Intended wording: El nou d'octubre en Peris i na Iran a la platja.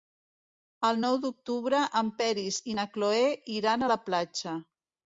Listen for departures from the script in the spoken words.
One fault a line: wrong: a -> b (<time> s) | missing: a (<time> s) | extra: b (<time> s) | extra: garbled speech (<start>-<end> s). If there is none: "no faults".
extra: Cloè (3.0 s)